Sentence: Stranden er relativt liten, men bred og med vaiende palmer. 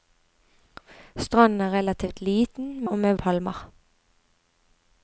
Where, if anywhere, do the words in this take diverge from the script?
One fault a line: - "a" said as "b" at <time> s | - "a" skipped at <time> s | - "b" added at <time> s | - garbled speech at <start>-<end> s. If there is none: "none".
- "men bred" skipped at 2.9 s
- "vaiende" skipped at 3.1 s